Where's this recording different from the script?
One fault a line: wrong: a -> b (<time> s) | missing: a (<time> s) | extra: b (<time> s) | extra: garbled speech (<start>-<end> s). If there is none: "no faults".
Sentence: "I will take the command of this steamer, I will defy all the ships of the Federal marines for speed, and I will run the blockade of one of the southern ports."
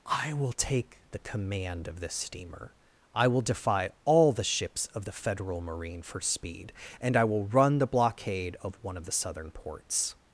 wrong: marines -> marine (5.6 s)